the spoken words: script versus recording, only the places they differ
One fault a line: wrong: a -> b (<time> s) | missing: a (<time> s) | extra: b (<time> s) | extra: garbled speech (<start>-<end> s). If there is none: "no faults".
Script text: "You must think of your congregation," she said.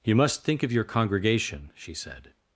no faults